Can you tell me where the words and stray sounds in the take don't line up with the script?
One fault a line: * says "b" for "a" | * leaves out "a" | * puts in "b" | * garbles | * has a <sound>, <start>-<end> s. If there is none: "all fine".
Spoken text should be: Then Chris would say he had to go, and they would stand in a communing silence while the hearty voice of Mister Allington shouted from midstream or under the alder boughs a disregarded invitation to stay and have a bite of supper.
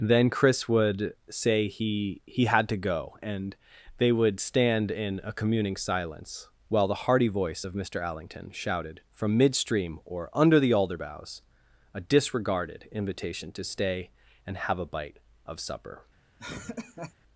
* puts in "he"
* has a laugh, 16.4-17.1 s